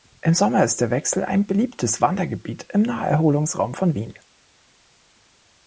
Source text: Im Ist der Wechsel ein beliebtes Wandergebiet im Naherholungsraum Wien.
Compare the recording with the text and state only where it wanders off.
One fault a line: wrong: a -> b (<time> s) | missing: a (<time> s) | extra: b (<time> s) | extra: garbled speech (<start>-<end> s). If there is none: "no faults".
extra: Sommer (0.3 s)
extra: von (3.8 s)